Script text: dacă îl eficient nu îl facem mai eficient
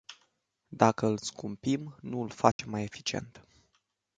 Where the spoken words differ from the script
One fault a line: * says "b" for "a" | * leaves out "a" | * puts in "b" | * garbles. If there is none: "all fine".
* says "scumpim" for "eficient"